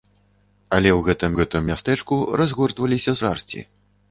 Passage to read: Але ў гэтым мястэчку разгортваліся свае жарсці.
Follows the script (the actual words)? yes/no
no